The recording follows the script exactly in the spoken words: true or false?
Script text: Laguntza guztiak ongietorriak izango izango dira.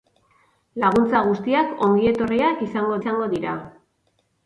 true